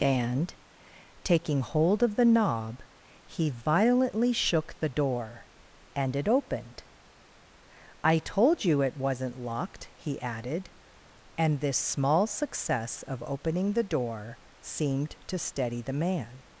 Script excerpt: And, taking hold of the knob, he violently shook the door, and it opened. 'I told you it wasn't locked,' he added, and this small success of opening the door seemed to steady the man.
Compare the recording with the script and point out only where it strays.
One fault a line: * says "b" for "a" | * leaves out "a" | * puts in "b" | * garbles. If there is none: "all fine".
all fine